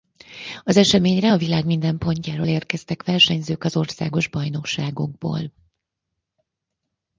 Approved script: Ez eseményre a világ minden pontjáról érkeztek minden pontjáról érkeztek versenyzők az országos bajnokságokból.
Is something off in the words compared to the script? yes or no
yes